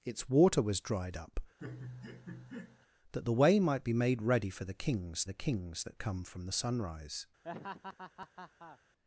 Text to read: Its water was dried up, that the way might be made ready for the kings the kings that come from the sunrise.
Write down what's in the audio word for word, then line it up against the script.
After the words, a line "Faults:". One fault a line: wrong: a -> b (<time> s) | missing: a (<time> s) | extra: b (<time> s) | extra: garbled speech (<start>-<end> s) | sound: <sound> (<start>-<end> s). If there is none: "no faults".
Its water was dried up, that the way might be made ready for the kings the kings that come from the sunrise.
Faults:
sound: laugh (1.6-2.9 s)
sound: laugh (7.4-8.8 s)